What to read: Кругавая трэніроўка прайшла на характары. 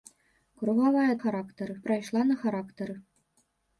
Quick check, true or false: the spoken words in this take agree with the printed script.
false